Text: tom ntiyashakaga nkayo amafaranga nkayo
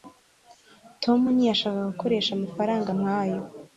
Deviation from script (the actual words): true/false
true